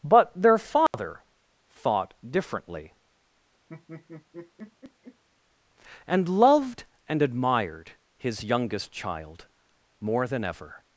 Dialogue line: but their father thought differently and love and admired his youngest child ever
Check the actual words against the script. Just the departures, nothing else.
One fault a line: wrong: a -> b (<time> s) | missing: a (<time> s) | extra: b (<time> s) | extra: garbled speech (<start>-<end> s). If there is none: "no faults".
wrong: love -> loved (6.3 s)
extra: more than (10.0 s)